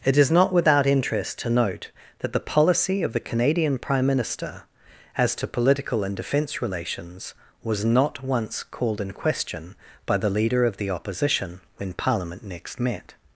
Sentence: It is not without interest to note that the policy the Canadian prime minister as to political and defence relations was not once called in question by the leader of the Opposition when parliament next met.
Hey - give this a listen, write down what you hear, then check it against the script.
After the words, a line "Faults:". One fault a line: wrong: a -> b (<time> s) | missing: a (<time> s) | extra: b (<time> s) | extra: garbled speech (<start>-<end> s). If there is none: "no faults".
It is not without interest to note that the policy of the Canadian prime minister as to political and defence relations was not once called in question by the leader of the Opposition when parliament next met.
Faults:
extra: of (3.0 s)